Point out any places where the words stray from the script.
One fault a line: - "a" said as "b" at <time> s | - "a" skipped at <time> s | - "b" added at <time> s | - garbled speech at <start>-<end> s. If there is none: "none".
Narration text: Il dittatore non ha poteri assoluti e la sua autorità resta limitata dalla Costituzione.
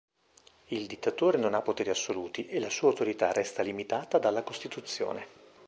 none